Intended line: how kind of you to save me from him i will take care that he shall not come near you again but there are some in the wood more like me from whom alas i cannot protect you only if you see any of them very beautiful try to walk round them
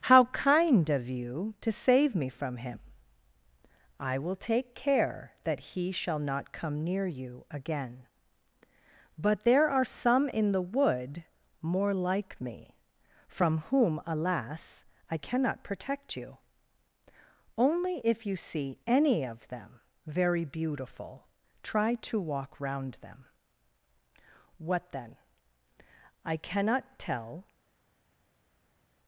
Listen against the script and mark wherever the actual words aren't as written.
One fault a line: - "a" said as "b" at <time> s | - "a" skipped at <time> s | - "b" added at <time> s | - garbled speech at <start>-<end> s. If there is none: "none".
- "what then i cannot tell" added at 24.6 s